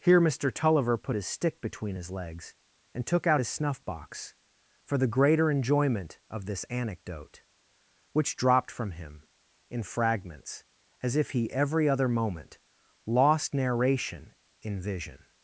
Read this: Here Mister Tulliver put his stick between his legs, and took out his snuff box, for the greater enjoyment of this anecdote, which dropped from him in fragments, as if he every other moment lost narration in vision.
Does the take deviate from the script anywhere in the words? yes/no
no